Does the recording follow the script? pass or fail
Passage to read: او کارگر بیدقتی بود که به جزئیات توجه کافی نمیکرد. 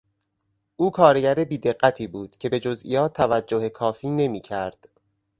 pass